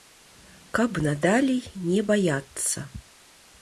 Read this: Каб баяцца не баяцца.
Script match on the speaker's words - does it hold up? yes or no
no